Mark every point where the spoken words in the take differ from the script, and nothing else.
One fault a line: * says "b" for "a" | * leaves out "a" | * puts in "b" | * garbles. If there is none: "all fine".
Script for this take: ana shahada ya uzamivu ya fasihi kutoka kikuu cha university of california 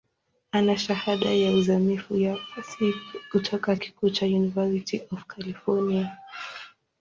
all fine